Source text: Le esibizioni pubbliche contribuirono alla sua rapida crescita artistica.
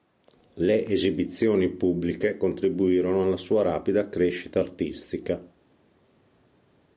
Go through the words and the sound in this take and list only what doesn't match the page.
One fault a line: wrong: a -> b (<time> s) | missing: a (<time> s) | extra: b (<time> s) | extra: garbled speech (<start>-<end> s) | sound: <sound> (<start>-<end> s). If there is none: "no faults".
no faults